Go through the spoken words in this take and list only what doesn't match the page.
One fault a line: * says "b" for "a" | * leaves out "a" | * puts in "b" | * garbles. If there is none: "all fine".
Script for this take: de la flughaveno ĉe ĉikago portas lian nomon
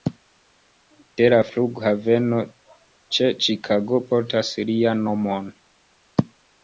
all fine